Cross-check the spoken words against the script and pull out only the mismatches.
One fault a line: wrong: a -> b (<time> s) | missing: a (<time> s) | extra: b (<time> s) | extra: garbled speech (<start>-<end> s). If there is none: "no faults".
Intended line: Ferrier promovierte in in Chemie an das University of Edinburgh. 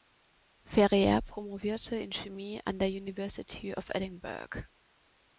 missing: in (2.1 s)
wrong: das -> der (2.8 s)